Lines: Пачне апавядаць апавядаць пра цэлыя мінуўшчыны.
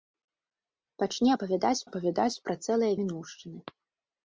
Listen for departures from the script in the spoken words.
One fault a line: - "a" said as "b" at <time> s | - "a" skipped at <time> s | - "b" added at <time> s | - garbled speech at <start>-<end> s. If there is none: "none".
none